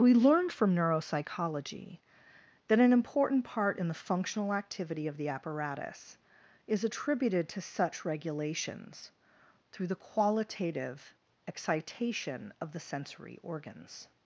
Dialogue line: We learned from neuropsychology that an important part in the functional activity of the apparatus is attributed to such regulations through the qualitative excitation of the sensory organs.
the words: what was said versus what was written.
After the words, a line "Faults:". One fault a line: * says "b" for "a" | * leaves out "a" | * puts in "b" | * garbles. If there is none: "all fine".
We learned from neuropsychology that an important part in the functional activity of the apparatus is attributed to such regulations through the qualitative excitation of the sensory organs.
Faults:
all fine